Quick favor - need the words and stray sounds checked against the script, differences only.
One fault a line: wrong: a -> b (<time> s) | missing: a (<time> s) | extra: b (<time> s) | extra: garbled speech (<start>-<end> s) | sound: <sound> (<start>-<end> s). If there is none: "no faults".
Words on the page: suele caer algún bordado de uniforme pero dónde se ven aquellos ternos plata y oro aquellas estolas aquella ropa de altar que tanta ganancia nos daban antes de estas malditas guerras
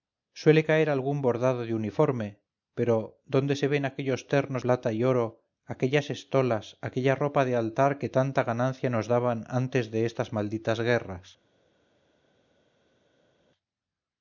no faults